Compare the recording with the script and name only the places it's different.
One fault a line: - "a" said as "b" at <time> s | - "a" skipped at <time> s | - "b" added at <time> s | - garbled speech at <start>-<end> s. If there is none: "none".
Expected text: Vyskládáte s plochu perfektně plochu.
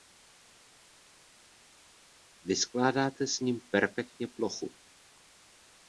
- "plochu" said as "ním" at 3.4 s